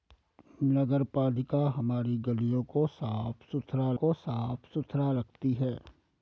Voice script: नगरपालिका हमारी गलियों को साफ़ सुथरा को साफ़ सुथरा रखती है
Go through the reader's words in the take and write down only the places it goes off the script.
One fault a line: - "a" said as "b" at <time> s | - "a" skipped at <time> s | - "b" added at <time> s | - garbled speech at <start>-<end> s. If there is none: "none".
none